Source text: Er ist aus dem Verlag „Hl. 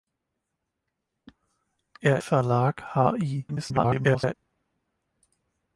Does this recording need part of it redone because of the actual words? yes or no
yes